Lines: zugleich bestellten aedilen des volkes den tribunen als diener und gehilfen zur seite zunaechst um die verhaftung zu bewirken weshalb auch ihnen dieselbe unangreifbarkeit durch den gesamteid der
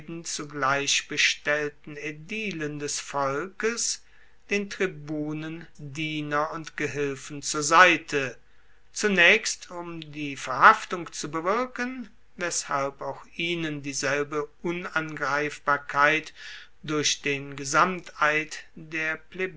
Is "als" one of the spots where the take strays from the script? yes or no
yes